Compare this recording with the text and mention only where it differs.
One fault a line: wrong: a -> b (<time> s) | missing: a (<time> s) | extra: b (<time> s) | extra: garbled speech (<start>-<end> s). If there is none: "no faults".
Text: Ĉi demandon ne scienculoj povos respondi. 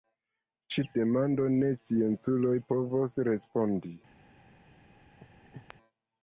no faults